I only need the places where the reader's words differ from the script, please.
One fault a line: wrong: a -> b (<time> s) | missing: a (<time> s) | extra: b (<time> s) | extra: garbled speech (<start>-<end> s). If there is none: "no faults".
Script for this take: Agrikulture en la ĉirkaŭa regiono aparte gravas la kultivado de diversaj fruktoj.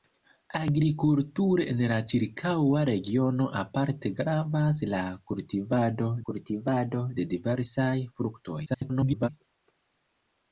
extra: kultivado (6.3 s)
extra: garbled speech (8.7-9.3 s)